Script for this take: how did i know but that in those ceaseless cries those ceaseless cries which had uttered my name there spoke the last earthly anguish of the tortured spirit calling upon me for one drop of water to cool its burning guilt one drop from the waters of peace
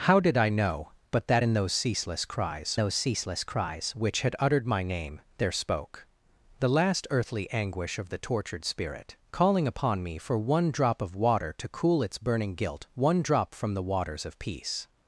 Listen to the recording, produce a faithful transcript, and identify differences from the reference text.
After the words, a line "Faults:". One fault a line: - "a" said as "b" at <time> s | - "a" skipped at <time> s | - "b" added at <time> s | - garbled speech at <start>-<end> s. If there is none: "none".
how did i know but that in those ceaseless cries those ceaseless cries which had uttered my name there spoke the last earthly anguish of the tortured spirit calling upon me for one drop of water to cool its burning guilt one drop from the waters of peace
Faults:
none